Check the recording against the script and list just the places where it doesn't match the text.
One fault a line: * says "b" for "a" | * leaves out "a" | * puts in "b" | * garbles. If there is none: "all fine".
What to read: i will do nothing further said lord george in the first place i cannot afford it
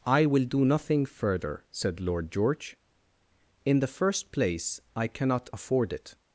all fine